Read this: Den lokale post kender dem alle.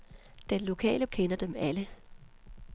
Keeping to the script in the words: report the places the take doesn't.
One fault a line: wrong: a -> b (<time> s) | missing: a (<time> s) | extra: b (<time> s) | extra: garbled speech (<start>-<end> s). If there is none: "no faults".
missing: post (1.1 s)